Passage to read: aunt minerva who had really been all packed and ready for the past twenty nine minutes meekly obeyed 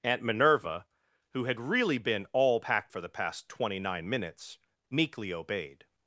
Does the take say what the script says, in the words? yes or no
no